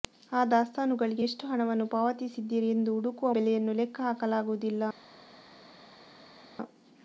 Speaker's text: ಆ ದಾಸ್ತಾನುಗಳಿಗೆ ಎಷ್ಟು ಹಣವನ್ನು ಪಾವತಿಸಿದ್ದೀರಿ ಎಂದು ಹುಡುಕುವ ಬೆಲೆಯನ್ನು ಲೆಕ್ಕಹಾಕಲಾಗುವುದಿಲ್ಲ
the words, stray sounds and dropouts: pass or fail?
pass